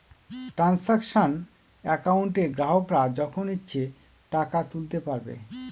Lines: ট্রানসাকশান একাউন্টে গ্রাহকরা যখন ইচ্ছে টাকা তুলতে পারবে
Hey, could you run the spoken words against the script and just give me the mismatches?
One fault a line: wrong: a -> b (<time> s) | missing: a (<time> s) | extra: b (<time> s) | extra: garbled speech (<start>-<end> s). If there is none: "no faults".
no faults